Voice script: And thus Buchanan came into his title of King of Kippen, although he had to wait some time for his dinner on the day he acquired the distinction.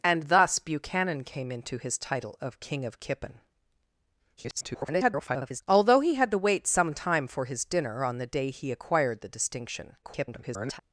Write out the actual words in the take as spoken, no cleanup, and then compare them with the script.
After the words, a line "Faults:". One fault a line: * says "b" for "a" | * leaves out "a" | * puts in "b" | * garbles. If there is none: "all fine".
And thus Buchanan came into his title of King of Kippen, [garbled] although he had to wait some time for his dinner on the day he acquired the distinction. [garbled]
Faults:
* garbles
* garbles